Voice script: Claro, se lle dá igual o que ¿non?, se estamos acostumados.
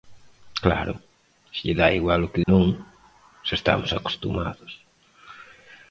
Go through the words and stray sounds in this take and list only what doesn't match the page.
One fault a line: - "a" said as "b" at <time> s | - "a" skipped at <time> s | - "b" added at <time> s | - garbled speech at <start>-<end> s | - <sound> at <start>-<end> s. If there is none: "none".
none